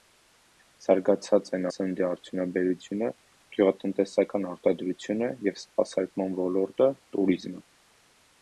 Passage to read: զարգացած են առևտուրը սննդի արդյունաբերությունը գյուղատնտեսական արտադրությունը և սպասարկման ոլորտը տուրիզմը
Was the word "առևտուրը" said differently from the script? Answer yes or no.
yes